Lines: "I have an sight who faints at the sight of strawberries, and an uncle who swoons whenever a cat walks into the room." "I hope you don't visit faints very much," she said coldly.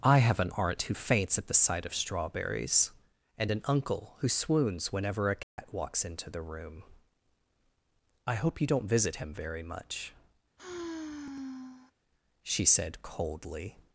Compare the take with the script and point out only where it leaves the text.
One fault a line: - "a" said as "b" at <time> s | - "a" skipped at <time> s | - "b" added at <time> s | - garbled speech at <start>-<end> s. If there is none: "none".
- "sight" said as "aunt" at 0.6 s
- "faints" said as "him" at 9.1 s